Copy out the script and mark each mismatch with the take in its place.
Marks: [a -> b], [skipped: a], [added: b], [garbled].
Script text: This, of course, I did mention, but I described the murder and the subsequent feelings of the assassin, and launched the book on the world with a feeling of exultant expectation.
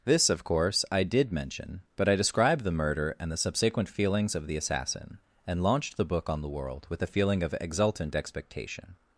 This, of course, I did mention, but I described the murder and the subsequent feelings of the assassin, and launched the book on the world with a feeling of exultant expectation.